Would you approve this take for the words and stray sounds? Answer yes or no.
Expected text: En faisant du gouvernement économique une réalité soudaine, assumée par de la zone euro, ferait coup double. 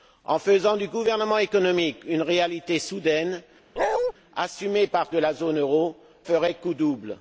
no